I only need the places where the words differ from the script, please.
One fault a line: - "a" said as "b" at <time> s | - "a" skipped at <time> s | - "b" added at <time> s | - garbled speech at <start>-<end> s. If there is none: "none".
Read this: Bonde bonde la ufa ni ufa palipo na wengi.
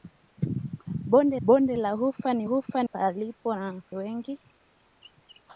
none